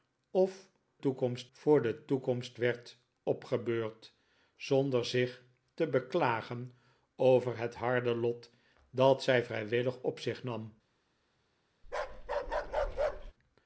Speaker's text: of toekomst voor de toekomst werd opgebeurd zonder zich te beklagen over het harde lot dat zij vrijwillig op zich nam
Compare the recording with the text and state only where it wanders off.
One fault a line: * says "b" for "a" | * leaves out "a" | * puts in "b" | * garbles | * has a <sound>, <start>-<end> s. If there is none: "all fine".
* has a bark, 11.8-13.3 s